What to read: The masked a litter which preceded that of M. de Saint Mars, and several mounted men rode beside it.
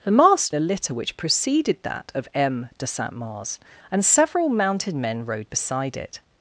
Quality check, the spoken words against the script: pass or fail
pass